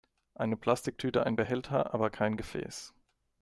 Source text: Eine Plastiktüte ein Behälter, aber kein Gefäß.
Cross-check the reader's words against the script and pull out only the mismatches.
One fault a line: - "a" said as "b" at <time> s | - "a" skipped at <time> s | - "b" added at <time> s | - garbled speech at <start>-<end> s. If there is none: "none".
none